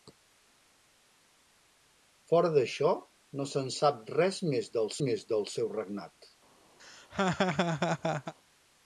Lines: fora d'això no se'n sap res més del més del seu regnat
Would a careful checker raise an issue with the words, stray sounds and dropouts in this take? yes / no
yes